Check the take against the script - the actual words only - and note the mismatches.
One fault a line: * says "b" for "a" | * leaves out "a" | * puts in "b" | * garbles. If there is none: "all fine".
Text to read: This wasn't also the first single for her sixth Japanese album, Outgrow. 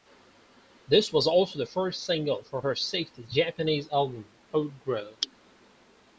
* says "was" for "wasn't"